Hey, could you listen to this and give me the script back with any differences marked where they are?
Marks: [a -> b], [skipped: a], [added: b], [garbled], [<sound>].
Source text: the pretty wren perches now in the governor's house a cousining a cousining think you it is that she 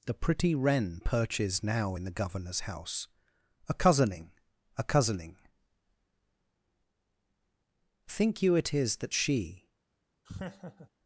the pretty wren perches now in the governor's house a cousining a cousining think you it is that she [laugh]